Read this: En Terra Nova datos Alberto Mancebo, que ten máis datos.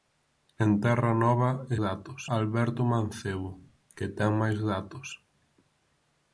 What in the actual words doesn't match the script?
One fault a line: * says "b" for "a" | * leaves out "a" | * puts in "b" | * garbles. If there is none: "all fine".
all fine